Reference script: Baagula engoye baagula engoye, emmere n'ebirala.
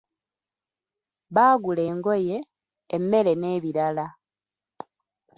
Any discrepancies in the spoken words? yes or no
yes